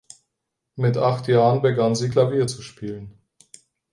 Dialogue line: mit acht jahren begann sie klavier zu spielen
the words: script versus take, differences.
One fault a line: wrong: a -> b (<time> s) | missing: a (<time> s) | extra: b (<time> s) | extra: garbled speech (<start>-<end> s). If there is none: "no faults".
no faults